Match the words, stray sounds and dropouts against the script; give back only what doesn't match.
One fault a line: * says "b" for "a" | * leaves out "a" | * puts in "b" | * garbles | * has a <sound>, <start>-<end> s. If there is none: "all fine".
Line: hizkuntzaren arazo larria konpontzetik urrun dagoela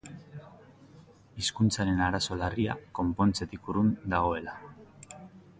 all fine